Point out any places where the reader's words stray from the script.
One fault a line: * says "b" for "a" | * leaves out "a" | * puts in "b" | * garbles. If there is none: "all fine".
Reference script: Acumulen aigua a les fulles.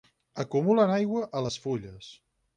all fine